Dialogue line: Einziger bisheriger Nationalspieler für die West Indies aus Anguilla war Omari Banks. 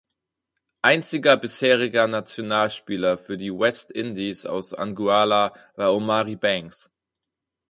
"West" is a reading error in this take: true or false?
false